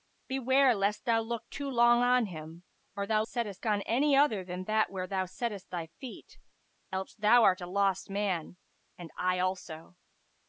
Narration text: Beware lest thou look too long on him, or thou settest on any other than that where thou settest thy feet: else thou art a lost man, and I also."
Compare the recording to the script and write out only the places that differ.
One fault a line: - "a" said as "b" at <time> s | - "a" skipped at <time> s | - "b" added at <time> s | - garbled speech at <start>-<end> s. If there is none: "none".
none